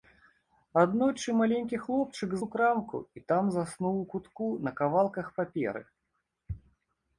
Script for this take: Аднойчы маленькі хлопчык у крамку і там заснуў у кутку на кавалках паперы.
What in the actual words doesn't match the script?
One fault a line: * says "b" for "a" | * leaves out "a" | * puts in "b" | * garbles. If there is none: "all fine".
all fine